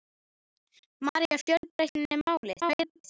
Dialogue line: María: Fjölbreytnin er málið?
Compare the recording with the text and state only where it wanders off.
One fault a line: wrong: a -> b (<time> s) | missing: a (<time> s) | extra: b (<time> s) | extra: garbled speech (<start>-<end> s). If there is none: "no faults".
extra: garbled speech (2.6-3.0 s)